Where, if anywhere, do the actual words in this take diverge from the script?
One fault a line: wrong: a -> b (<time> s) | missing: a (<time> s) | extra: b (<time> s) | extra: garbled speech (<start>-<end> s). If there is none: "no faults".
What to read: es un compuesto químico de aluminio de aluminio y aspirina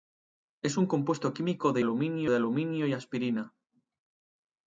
no faults